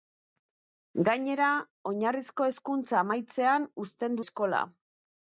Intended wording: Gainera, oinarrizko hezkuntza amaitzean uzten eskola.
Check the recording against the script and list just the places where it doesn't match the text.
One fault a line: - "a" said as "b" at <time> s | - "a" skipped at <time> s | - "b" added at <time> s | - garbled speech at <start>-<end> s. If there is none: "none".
none